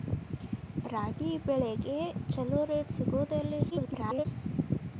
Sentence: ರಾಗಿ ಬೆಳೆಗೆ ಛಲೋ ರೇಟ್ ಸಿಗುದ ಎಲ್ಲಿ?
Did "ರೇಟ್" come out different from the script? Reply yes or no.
no